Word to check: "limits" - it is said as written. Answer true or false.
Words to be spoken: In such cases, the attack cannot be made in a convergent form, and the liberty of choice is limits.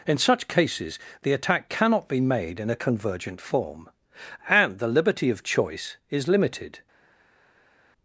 false